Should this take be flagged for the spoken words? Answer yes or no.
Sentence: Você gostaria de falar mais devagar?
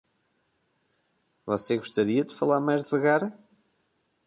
no